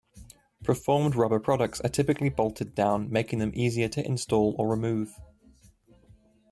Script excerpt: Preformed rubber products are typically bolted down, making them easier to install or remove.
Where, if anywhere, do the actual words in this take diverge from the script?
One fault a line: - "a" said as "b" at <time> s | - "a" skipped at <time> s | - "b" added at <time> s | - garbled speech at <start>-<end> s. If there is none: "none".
none